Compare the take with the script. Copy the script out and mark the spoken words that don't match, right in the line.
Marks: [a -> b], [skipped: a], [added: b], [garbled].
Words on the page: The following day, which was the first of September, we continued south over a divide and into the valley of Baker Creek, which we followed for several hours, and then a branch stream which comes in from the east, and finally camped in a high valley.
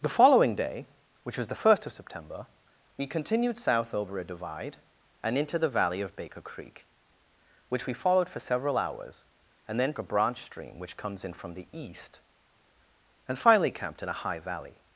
The following day, which was the first of September, we continued south over a divide and into the valley of Baker Creek, which we followed for several hours, and then a branch stream which comes in from the east, and finally camped in a high valley.